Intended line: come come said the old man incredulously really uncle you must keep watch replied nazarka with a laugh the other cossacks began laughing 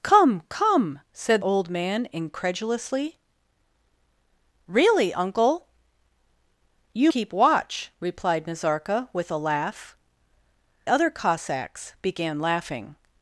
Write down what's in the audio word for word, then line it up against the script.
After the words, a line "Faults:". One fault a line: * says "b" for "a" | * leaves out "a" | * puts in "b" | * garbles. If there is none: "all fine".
come come said old man incredulously really uncle you keep watch replied nazarka with a laugh other cossacks began laughing
Faults:
* leaves out "the"
* leaves out "must"
* leaves out "the"